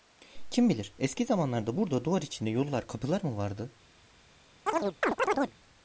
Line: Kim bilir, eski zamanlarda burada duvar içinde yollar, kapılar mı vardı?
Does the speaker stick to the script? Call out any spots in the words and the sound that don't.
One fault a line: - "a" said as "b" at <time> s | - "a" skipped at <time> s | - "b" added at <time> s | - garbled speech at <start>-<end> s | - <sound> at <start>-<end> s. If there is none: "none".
- chirp at 4.7-5.6 s